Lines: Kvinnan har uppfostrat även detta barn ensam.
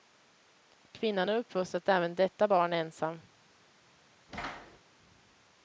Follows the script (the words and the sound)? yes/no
no